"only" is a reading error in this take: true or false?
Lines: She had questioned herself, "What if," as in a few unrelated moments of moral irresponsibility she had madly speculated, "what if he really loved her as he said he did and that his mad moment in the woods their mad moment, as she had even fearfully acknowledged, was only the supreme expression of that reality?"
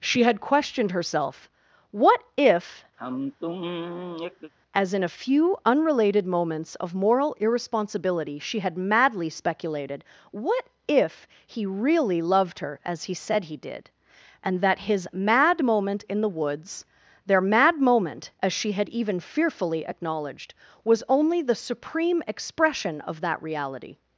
false